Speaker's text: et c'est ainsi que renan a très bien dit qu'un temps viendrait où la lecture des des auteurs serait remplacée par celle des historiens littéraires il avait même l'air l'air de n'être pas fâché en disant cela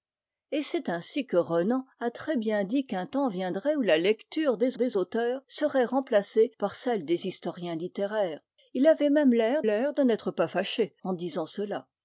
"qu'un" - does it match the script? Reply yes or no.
yes